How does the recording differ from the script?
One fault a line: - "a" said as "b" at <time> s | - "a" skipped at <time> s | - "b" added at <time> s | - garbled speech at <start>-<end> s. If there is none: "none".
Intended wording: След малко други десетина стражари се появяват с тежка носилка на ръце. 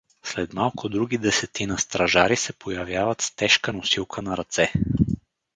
none